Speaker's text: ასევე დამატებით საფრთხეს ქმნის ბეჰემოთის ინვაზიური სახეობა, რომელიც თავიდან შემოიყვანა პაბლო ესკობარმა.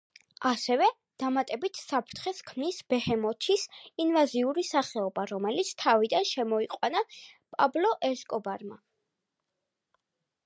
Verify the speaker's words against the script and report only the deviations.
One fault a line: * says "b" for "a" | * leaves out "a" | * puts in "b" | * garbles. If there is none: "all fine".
all fine